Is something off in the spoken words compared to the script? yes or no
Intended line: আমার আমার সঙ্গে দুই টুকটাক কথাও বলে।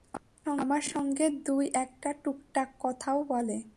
yes